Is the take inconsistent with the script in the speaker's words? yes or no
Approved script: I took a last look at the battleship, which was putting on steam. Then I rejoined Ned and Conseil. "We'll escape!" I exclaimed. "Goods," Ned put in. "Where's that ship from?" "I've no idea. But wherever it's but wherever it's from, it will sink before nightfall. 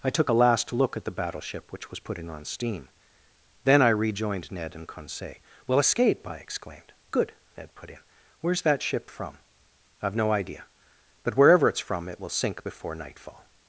yes